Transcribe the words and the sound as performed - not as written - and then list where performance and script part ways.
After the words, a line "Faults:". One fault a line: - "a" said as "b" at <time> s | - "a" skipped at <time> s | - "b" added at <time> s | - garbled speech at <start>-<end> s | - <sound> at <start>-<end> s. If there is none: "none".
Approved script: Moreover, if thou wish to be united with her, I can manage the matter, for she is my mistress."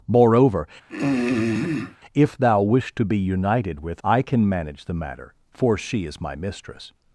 Moreover, if thou wish to be united with I can manage the matter, for she is my mistress."
Faults:
- throat clearing at 0.9-2.0 s
- "her" skipped at 4.0 s